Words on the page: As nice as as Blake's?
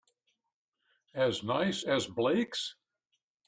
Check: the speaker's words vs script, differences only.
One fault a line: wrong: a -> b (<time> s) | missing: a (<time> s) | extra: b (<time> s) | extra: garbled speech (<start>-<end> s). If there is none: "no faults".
missing: as (2.1 s)